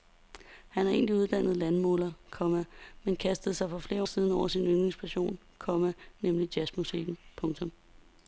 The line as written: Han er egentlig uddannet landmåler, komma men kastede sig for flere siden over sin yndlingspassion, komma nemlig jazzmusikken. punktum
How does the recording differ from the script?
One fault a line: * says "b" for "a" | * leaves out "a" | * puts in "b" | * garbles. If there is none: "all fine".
all fine